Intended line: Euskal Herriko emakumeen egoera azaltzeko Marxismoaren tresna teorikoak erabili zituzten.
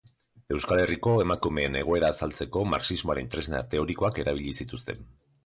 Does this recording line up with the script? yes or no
yes